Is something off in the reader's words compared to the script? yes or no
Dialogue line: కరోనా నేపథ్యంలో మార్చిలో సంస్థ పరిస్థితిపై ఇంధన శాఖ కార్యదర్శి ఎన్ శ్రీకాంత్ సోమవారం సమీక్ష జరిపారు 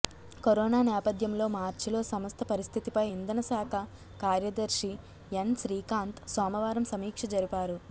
no